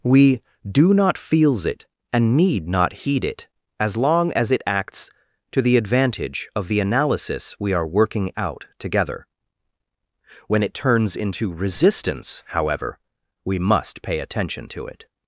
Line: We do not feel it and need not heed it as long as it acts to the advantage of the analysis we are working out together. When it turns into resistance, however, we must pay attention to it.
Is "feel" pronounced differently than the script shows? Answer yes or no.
yes